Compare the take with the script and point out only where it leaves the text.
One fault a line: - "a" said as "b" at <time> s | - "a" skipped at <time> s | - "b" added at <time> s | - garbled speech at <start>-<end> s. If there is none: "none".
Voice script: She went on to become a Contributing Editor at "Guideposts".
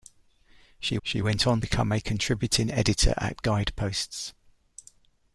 - "she" added at 1.0 s
- "to" skipped at 1.6 s